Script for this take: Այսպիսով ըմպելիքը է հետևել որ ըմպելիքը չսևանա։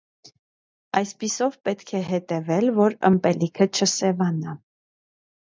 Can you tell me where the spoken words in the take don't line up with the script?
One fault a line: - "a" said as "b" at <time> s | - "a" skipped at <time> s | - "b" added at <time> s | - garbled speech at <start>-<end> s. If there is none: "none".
- "ըմպելիքը" said as "պետք" at 1.7 s